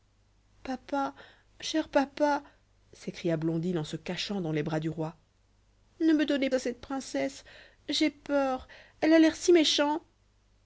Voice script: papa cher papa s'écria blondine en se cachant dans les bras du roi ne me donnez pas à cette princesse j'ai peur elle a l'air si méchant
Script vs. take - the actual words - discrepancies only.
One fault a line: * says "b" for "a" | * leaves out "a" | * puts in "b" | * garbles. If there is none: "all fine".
* leaves out "pas"